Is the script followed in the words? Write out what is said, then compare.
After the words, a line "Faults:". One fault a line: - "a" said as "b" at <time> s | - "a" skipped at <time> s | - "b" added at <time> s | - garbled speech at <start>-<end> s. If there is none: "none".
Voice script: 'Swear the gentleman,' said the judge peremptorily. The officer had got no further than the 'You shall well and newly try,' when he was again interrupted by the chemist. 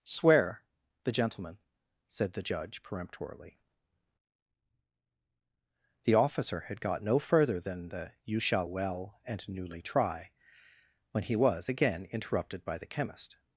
'Swear the gentleman,' said the judge peremptorily. The officer had got no further than the 'You shall well and newly try,' when he was again interrupted by the chemist.
Faults:
none